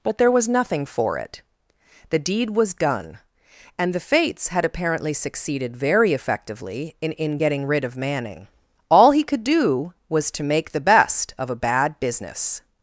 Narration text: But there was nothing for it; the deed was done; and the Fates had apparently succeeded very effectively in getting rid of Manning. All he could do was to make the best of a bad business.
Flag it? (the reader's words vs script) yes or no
yes